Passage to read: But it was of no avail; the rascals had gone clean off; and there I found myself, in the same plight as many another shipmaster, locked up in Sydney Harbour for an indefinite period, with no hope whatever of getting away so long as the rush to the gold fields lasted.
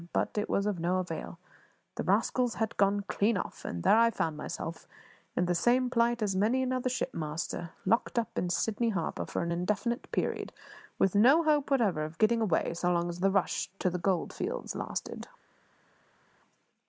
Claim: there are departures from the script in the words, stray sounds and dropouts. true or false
false